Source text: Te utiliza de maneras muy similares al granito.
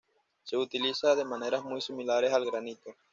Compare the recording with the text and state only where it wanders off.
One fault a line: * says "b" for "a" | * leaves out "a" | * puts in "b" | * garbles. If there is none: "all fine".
* says "Se" for "Te"